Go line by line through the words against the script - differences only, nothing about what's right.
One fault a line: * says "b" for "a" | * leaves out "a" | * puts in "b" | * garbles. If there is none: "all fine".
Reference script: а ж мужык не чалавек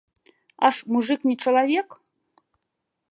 all fine